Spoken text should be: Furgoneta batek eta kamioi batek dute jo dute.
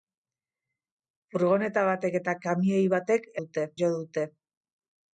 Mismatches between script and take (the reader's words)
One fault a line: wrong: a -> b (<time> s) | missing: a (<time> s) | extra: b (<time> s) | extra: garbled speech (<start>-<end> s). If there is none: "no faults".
no faults